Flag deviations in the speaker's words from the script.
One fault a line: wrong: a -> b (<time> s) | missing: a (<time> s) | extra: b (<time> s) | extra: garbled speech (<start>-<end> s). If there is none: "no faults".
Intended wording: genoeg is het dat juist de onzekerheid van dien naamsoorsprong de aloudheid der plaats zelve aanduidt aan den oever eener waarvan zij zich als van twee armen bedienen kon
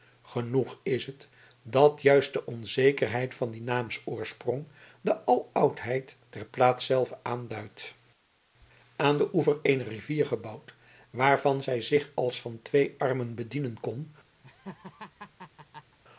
extra: rivier gebouwd (9.9 s)